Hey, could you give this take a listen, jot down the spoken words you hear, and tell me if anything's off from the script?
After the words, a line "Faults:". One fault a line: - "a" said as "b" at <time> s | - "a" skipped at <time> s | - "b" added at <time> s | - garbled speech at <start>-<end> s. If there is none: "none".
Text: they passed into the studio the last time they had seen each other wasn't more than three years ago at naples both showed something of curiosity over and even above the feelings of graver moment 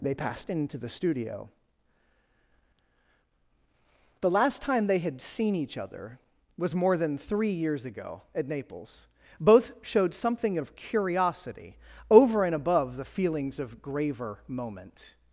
they passed into the studio the last time they had seen each other was more than three years ago at naples both showed something of curiosity over and above the feelings of graver moment
Faults:
- "wasn't" said as "was" at 6.6 s
- "even" skipped at 12.5 s